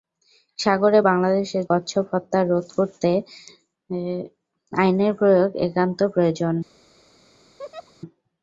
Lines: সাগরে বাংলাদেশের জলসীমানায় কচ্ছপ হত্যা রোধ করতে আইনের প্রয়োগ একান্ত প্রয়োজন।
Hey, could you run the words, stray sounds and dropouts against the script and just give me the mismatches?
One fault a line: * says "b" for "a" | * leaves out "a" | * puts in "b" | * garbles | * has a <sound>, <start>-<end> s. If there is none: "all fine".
* leaves out "জলসীমানায়"
* has a laugh, 7.6-7.9 s